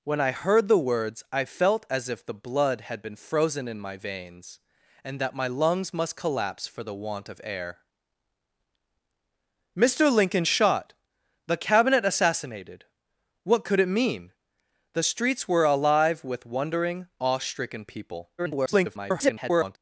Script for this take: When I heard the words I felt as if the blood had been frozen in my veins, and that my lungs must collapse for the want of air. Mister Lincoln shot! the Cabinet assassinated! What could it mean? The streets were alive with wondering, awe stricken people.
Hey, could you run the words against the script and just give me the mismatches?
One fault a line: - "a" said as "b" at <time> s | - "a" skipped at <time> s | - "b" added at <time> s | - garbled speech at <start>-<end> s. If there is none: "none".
- garbled speech at 18.4-19.8 s